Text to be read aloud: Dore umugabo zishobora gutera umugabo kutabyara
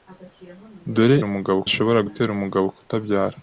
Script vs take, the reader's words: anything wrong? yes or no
no